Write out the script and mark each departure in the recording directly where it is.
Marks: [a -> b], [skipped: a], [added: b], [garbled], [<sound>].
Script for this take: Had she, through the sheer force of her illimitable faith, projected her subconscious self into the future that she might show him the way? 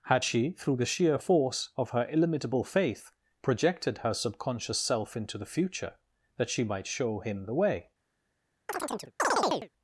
Had she, through the sheer force of her illimitable faith, projected her subconscious self into the future that she might show him the way? [chirp]